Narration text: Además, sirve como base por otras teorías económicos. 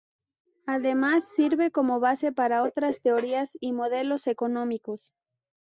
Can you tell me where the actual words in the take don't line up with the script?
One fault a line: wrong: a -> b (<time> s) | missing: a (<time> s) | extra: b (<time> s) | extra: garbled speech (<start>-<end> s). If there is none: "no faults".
wrong: por -> para (2.3 s)
extra: y modelos (3.6 s)